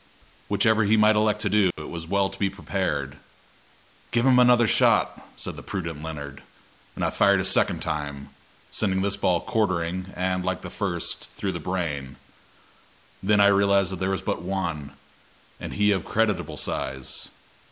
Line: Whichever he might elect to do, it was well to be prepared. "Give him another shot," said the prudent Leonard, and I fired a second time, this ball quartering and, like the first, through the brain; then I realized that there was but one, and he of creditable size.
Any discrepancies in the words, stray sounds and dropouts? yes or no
yes